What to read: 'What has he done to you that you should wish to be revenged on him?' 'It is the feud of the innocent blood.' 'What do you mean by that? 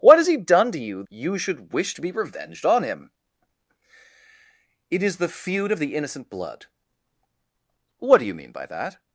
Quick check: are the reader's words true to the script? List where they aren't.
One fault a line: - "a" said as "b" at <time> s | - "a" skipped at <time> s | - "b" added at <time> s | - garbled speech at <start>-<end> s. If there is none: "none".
- "that" skipped at 1.0 s